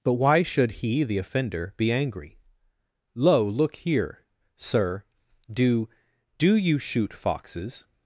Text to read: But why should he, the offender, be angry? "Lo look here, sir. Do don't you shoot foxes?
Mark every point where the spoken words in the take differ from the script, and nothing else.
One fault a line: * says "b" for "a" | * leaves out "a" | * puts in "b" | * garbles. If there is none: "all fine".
* says "do" for "don't"